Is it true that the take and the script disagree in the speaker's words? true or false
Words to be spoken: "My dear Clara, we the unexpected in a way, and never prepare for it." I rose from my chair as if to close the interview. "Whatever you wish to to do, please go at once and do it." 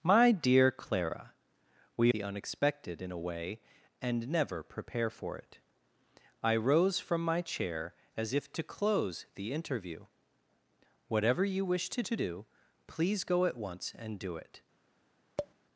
false